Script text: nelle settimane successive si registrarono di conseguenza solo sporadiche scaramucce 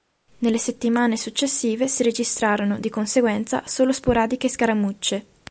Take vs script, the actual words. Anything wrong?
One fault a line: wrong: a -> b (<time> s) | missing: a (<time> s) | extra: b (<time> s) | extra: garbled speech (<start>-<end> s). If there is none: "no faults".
no faults